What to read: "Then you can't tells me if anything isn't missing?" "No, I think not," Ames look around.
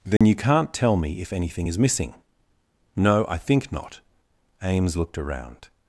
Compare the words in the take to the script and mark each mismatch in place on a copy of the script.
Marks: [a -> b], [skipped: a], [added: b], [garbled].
"Then you can't [tells -> tell] me if anything [isn't -> is] missing?" "No, I think not," Ames [look -> looked] around.